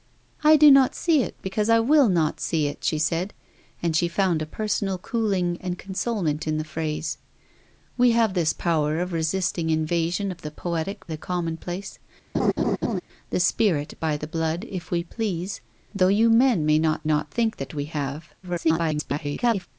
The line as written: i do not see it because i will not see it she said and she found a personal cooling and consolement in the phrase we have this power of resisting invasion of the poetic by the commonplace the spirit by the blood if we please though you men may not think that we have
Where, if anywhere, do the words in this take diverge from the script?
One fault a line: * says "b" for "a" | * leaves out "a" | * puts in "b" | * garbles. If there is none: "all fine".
* leaves out "by"
* puts in "not"
* garbles